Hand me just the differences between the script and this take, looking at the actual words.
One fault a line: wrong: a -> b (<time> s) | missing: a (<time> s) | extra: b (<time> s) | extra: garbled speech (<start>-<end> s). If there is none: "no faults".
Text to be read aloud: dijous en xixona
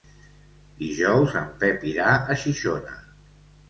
extra: pep irà a (1.6 s)